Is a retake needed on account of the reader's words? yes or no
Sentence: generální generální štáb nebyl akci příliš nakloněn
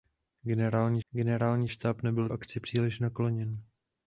no